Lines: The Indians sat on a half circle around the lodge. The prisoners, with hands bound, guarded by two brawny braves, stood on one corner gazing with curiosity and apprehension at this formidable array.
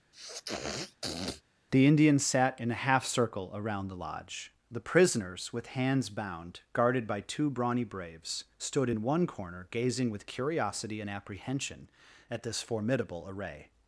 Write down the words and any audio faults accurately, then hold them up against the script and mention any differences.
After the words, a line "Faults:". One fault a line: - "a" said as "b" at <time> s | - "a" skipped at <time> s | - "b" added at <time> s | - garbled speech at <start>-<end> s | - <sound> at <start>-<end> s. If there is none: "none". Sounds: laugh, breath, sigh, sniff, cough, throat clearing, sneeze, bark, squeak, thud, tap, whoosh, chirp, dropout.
The Indians sat in a half circle around the lodge. The prisoners, with hands bound, guarded by two brawny braves, stood in one corner gazing with curiosity and apprehension at this formidable array.
Faults:
- sniff at 0.1-1.4 s
- "on" said as "in" at 2.6 s
- "on" said as "in" at 8.9 s